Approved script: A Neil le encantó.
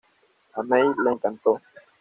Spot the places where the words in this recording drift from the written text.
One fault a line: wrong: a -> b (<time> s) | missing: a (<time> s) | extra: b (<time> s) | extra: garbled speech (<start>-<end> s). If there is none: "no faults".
no faults